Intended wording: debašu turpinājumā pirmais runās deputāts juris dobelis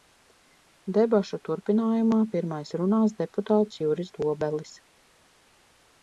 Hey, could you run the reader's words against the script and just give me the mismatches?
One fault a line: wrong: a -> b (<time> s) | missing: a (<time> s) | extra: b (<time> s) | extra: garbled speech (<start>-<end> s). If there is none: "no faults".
no faults